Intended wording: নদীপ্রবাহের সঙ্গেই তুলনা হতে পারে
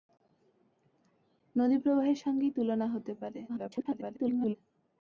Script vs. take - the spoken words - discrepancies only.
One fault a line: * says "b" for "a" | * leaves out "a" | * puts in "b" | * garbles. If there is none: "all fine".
* garbles